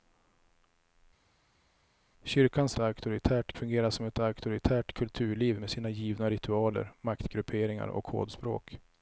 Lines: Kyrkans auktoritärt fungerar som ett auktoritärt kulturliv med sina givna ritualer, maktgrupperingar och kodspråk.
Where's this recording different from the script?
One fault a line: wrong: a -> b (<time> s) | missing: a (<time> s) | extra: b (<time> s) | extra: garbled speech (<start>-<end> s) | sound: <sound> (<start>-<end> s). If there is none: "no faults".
no faults